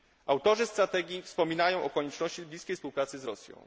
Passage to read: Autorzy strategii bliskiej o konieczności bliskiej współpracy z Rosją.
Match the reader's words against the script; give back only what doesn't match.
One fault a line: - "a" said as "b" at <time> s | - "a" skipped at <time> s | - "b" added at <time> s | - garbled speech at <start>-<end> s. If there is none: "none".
- "bliskiej" said as "wspominają" at 1.2 s